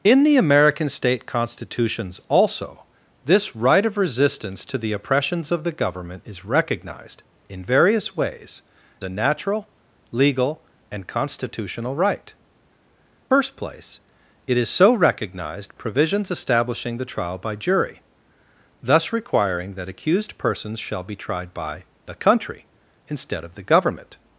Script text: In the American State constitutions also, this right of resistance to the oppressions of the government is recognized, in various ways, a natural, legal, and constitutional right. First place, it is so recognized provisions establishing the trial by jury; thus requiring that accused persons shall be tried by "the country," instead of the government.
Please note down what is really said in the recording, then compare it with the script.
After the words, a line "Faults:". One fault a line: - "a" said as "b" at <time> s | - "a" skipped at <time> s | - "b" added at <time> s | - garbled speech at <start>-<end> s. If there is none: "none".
In the American State constitutions also, this right of resistance to the oppressions of the government is recognized, in various ways, a natural, legal, and constitutional right. First place, it is so recognized provisions establishing the trial by jury; thus requiring that accused persons shall be tried by "the country," instead of the government.
Faults:
none